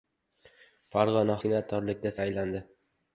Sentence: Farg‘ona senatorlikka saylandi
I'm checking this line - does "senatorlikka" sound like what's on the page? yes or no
yes